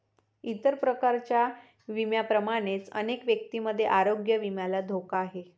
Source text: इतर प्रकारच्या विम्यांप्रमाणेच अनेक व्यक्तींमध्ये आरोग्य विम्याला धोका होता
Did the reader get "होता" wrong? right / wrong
wrong